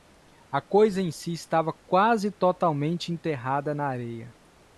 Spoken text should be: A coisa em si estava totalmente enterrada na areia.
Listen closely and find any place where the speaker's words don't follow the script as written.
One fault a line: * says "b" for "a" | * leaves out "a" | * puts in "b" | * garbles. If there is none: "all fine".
* puts in "quase"